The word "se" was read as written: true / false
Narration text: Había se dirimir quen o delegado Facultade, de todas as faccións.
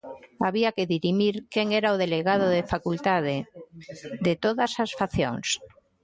false